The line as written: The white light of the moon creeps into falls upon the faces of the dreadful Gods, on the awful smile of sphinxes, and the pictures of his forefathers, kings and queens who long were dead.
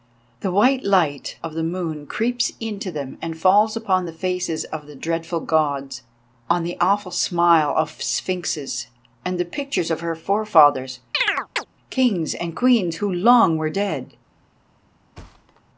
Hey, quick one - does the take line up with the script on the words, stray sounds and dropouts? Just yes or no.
no